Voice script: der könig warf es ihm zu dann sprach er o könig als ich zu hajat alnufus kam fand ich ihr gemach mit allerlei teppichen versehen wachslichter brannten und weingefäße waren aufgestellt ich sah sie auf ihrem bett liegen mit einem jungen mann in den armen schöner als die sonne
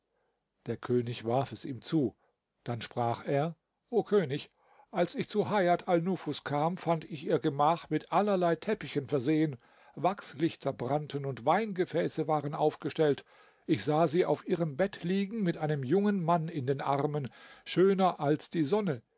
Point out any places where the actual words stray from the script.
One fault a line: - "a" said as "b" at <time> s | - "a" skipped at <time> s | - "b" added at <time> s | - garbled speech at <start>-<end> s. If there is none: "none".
none